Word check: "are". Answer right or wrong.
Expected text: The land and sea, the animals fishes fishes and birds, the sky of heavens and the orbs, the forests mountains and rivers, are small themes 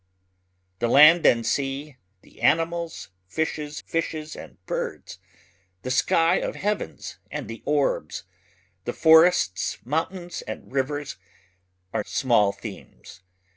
right